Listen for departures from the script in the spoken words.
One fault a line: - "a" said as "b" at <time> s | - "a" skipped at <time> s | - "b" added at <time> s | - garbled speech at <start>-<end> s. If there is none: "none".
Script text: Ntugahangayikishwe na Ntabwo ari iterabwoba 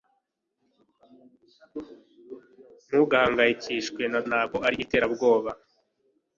none